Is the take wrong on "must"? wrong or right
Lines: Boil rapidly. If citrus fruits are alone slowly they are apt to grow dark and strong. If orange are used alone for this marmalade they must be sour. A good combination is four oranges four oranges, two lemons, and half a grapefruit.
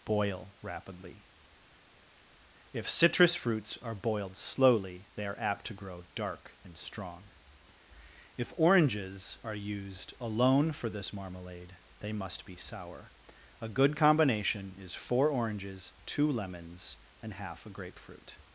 right